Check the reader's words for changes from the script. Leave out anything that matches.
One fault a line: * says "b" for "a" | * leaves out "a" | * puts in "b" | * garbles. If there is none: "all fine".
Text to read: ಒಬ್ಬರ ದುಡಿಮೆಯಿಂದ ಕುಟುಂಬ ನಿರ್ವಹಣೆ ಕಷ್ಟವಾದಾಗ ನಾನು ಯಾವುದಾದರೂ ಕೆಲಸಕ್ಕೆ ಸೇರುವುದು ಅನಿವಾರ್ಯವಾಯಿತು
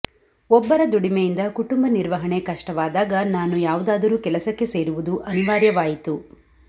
all fine